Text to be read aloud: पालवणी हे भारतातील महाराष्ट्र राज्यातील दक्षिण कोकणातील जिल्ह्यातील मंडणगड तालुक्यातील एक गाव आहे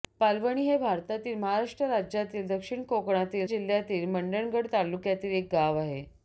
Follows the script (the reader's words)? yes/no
yes